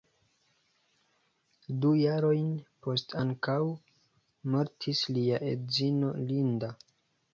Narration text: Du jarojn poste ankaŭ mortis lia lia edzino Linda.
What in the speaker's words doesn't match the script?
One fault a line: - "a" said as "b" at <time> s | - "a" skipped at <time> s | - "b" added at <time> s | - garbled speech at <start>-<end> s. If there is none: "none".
- "lia" skipped at 5.4 s